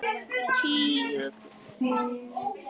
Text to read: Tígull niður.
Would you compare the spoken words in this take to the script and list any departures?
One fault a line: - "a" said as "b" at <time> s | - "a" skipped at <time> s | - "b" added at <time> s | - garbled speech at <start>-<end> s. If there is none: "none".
none